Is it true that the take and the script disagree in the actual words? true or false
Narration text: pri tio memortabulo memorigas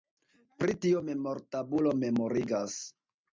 false